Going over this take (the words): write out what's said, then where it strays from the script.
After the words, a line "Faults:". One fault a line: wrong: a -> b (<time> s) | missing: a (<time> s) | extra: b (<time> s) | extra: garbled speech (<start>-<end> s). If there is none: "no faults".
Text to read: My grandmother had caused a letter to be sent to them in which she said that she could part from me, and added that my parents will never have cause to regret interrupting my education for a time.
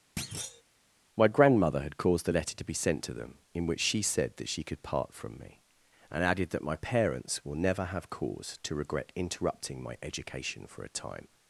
My grandmother had caused a letter to be sent to them in which she said that she could part from me, and added that my parents will never have cause to regret interrupting my education for a time.
Faults:
no faults